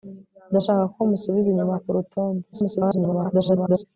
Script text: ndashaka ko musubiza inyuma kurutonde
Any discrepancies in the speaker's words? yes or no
yes